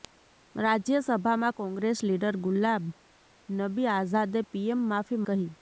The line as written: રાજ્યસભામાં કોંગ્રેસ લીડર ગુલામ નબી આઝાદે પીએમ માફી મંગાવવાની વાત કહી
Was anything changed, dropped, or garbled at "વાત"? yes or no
yes